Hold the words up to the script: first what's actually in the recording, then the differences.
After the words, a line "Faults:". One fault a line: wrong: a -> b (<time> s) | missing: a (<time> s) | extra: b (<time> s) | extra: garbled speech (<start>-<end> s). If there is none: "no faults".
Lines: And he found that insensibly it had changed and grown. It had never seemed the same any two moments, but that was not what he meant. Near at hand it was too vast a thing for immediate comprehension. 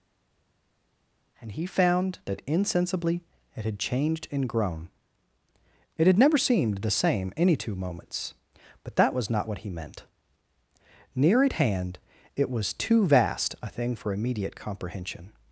And he found that insensibly it had changed and grown. It had never seemed the same any two moments, but that was not what he meant. Near at hand it was too vast a thing for immediate comprehension.
Faults:
no faults